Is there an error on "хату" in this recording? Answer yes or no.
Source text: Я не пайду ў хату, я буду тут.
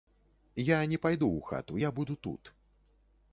no